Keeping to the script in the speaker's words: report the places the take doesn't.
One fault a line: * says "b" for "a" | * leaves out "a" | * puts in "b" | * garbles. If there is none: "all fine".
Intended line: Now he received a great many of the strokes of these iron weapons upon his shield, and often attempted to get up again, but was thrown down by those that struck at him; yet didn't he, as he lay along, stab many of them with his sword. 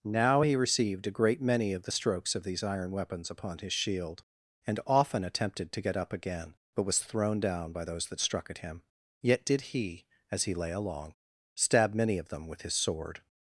* says "did" for "didn't"